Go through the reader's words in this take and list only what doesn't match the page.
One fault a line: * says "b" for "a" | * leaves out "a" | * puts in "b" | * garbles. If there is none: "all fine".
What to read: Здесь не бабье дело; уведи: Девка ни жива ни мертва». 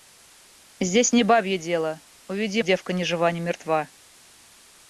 all fine